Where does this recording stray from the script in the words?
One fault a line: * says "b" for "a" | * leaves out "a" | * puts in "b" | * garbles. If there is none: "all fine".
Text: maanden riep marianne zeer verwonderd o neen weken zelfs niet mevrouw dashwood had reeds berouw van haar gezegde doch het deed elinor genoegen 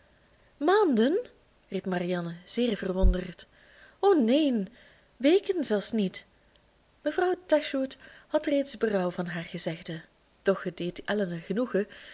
all fine